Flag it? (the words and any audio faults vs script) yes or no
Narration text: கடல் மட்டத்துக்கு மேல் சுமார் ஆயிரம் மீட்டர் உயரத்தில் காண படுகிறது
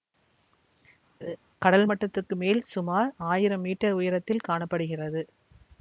yes